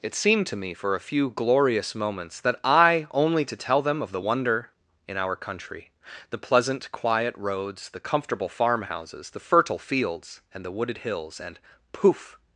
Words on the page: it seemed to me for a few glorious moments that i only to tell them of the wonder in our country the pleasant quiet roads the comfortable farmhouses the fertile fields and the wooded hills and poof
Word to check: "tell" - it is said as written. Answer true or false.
true